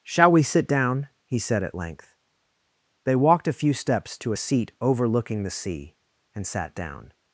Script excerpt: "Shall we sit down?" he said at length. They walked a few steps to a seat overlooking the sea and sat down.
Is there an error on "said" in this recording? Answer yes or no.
no